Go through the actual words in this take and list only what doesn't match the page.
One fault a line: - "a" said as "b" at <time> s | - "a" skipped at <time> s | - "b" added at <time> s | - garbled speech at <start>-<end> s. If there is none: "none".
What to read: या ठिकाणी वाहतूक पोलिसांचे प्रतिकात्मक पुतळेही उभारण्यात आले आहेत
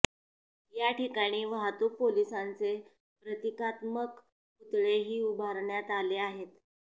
none